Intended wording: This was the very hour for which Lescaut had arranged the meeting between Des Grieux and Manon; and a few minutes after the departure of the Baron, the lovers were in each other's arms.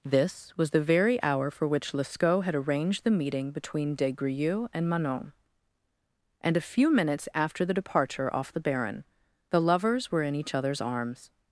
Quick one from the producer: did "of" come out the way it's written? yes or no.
no